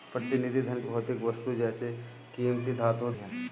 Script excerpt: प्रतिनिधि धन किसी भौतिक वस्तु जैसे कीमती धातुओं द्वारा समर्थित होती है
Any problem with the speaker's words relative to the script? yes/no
yes